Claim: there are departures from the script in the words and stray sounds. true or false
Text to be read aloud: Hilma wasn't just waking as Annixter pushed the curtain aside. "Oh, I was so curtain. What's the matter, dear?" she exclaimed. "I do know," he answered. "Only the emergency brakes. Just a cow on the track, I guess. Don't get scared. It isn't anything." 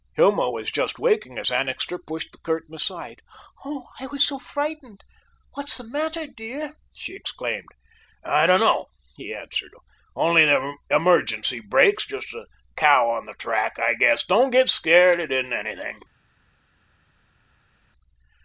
true